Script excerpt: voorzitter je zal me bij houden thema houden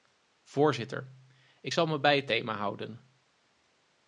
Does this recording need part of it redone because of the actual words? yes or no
yes